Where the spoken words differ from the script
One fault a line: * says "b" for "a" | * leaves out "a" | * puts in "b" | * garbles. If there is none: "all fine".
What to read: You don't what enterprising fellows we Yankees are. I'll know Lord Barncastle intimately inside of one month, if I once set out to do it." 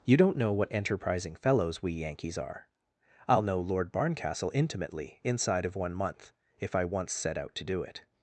* puts in "know"